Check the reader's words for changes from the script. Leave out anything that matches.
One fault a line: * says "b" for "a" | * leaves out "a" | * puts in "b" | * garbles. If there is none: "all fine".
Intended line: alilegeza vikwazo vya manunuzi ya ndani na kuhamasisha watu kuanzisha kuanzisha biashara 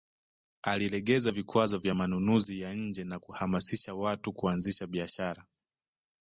* says "nje" for "ndani"
* leaves out "kuanzisha"